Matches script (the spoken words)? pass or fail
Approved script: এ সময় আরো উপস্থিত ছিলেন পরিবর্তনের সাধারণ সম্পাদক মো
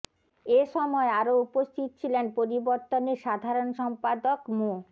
pass